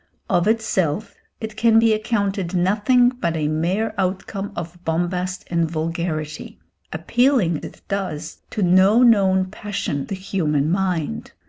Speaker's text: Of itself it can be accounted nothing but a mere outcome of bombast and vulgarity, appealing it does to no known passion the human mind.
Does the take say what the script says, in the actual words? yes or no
yes